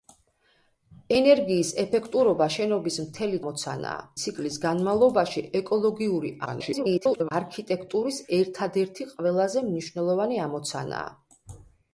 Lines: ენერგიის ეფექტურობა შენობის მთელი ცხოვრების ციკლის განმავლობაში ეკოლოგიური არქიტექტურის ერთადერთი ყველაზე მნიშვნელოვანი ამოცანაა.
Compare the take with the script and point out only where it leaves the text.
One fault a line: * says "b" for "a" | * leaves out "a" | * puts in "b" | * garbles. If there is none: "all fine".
* says "ამოცანაა" for "ცხოვრების"
* garbles